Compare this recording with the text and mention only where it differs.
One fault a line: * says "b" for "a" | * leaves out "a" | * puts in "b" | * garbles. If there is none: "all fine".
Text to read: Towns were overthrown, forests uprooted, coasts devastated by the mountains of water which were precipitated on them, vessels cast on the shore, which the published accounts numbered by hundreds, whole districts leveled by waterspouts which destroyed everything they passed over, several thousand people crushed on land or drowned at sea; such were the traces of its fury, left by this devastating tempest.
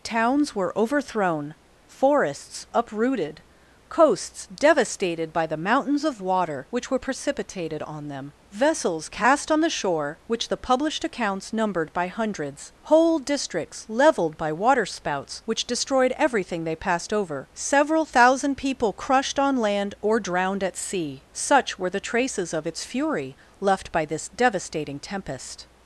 all fine